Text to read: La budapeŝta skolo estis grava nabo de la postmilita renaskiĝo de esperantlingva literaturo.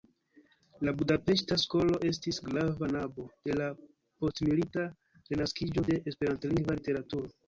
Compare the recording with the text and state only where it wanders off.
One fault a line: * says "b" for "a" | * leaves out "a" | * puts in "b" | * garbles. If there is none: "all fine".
all fine